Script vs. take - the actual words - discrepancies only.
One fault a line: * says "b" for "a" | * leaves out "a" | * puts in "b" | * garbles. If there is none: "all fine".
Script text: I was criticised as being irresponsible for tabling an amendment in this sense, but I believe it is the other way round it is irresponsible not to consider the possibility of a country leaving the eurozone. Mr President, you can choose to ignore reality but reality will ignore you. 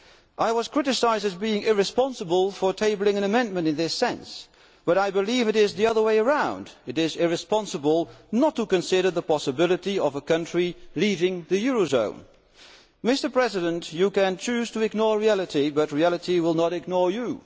* puts in "not"